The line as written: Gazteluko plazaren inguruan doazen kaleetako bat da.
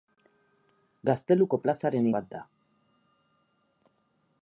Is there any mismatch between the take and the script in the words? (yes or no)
yes